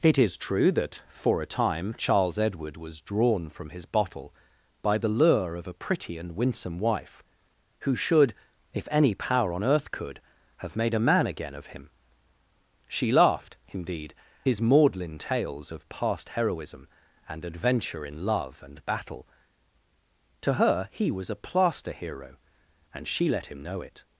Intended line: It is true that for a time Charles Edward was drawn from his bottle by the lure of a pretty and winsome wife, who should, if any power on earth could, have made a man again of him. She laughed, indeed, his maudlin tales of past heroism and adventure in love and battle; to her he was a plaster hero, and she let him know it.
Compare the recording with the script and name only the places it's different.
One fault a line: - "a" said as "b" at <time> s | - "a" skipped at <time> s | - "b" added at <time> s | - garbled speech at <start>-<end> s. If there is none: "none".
none